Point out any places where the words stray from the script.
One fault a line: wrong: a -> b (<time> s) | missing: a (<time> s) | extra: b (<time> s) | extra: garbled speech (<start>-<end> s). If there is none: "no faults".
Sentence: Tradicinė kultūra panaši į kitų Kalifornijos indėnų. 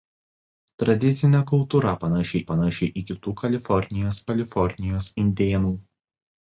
extra: panaši (2.5 s)
extra: Kalifornijos (4.3 s)